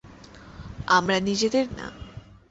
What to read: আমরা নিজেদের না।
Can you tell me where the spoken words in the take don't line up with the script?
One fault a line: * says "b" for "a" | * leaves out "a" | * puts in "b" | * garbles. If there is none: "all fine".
all fine